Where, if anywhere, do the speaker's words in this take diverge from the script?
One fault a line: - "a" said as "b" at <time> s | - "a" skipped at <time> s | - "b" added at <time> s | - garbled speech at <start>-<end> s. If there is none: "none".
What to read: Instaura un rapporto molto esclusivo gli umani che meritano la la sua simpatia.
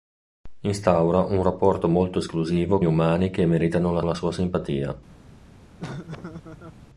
none